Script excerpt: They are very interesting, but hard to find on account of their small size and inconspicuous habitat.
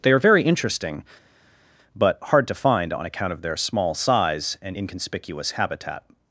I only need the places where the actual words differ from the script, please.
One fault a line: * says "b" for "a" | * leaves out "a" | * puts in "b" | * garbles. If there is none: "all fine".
all fine